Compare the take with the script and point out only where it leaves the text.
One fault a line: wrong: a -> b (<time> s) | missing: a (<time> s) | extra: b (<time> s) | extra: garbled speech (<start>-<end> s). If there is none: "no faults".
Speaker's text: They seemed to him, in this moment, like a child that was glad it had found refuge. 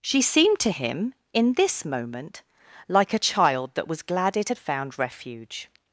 wrong: They -> She (0.0 s)